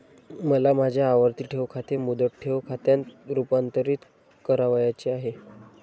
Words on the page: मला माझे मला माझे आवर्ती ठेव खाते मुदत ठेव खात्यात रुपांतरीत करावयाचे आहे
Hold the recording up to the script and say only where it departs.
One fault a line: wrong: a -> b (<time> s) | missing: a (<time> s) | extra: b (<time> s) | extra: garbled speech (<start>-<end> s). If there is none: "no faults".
missing: मला माझे (1.0 s)